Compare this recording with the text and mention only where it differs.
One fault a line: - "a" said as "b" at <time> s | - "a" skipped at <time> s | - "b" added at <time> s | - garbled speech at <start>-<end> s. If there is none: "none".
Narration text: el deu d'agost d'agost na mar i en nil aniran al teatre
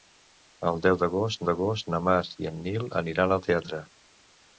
none